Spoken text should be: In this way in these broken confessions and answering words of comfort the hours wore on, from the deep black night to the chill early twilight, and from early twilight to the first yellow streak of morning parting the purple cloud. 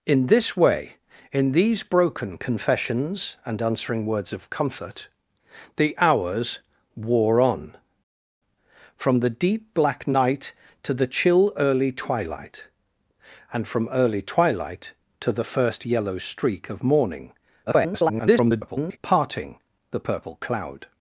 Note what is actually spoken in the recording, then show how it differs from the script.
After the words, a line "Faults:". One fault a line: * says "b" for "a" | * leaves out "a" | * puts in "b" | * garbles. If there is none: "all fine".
In this way in these broken confessions and answering words of comfort the hours wore on, from the deep black night to the chill early twilight, and from early twilight to the first yellow streak of morning [garbled] parting the purple cloud.
Faults:
* garbles